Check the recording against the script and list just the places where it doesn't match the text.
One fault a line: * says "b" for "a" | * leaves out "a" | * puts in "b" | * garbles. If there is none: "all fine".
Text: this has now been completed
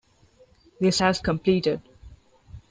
* leaves out "now been"